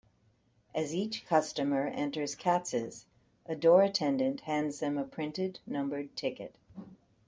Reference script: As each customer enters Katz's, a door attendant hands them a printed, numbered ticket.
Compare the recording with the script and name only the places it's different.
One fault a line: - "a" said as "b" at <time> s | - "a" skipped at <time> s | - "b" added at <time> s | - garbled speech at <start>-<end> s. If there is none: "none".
none